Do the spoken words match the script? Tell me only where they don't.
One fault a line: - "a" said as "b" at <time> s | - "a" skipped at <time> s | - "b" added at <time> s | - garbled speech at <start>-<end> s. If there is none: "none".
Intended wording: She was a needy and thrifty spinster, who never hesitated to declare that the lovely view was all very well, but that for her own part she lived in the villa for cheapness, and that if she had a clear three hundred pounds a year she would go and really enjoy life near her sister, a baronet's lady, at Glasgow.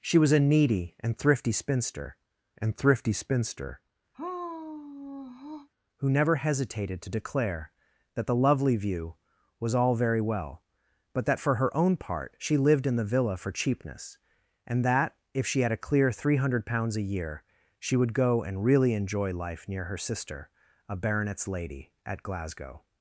- "and thrifty spinster" added at 2.6 s